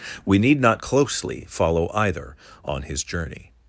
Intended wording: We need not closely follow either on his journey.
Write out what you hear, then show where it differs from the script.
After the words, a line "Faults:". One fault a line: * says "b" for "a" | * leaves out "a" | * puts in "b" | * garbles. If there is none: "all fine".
We need not closely follow either on his journey.
Faults:
all fine